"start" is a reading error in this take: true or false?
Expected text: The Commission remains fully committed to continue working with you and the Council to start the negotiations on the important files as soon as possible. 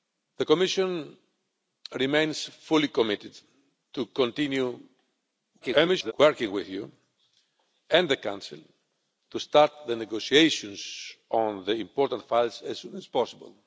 false